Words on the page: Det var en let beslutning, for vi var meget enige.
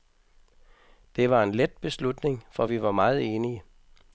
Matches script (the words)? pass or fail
pass